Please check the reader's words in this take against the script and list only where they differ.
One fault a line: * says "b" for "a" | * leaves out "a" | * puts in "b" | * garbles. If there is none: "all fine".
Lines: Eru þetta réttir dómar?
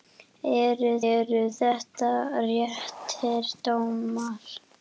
* puts in "eru"